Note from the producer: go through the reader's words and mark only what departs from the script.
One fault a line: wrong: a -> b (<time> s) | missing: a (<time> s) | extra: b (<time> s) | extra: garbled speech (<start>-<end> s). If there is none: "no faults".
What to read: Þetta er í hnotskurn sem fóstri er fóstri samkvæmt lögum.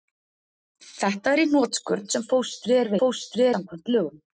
no faults